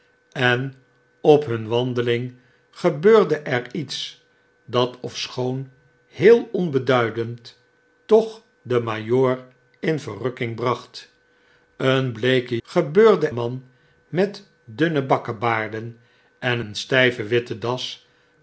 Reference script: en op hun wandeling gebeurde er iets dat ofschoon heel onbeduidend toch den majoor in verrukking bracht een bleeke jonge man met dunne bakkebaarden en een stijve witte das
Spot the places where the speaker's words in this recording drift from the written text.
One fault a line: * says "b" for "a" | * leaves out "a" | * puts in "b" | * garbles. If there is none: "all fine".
* says "gebeurde" for "jonge"